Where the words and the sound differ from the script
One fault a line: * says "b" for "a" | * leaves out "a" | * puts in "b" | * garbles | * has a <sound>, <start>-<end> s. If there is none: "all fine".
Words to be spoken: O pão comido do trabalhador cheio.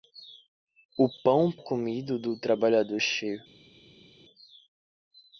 all fine